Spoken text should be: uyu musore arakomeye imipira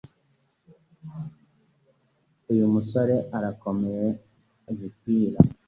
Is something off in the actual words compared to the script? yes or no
no